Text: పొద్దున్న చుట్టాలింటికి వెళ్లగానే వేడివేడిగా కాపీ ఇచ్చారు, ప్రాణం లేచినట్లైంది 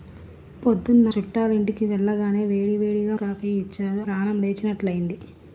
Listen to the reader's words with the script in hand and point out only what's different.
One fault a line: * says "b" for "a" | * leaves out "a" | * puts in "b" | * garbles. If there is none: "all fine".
all fine